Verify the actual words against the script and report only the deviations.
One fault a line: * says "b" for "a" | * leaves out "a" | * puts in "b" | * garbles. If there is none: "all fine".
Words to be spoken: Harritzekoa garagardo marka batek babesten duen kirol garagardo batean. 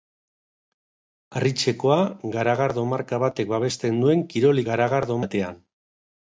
all fine